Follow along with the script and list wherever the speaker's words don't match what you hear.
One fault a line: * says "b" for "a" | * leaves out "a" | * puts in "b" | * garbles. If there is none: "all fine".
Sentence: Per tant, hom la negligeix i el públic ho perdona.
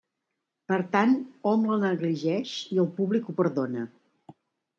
all fine